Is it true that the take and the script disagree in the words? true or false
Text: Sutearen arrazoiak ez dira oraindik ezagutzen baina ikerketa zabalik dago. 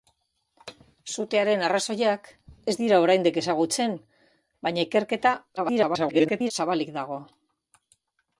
true